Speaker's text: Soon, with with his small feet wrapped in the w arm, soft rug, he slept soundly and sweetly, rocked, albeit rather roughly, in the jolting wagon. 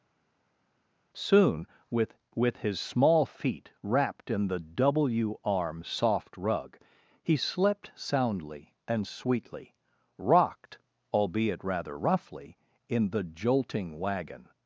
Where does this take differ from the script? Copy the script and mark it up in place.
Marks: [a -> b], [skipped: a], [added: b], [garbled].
Soon, with with his small feet wrapped in the w arm, soft rug, he slept soundly and sweetly, rocked, albeit rather roughly, in the jolting wagon.